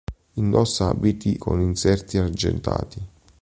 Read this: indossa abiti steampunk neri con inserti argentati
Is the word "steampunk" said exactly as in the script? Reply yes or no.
no